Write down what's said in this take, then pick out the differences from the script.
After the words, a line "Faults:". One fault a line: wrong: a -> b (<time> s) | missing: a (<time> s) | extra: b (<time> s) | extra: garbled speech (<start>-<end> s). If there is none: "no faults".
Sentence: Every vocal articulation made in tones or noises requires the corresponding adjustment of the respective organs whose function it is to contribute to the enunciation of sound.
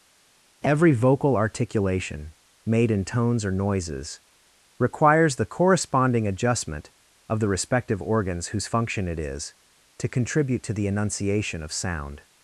Every vocal articulation made in tones or noises requires the corresponding adjustment of the respective organs whose function it is to contribute to the enunciation of sound.
Faults:
no faults